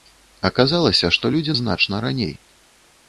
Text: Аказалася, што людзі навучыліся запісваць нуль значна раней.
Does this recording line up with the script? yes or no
no